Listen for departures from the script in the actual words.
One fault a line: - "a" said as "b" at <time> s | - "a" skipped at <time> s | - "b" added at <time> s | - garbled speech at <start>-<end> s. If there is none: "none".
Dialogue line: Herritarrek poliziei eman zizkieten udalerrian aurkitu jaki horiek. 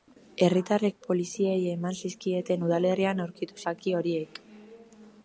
none